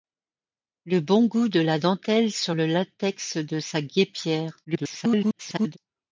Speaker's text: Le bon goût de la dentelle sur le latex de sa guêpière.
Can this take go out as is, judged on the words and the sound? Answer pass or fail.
fail